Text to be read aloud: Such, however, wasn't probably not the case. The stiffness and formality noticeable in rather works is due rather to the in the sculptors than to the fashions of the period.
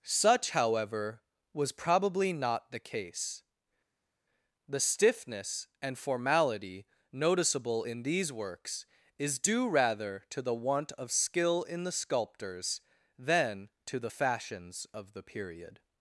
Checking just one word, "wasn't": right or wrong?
wrong